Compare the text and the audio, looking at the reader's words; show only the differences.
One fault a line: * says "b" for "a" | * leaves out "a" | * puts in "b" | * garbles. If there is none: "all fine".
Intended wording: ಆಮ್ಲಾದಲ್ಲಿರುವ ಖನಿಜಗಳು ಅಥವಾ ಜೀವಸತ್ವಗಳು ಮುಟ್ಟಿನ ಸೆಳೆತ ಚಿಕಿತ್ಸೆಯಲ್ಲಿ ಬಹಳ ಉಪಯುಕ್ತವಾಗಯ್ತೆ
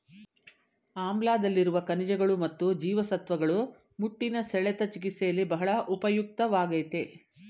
* says "ಮತ್ತು" for "ಅಥವಾ"